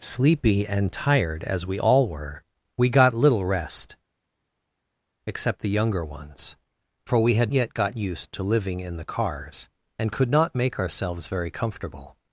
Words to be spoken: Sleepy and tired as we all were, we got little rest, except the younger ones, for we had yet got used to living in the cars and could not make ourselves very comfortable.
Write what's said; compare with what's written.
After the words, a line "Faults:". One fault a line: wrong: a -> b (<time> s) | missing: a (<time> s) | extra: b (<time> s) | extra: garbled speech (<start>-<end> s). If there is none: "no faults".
Sleepy and tired as we all were, we got little rest, except the younger ones, for we had yet got used to living in the cars and could not make ourselves very comfortable.
Faults:
no faults